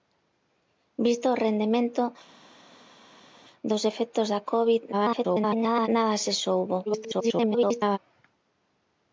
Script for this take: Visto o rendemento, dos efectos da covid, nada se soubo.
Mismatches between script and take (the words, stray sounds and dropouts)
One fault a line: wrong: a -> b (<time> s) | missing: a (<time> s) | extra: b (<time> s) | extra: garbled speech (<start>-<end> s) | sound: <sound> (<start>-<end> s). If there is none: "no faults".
extra: garbled speech (4.9-5.9 s)
extra: garbled speech (6.9-8.0 s)